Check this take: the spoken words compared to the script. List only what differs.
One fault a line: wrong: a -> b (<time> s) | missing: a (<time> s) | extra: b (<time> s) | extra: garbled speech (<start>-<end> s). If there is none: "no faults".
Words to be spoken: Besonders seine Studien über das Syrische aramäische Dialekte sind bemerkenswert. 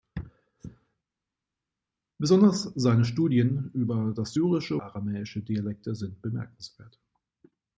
no faults